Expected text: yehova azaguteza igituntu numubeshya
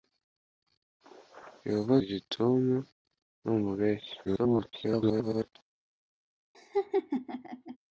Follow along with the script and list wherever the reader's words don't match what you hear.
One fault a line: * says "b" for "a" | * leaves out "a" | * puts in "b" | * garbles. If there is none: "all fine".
* leaves out "azaguteza"
* garbles